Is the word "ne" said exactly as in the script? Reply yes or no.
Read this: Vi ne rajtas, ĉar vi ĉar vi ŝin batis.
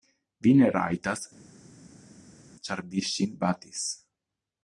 yes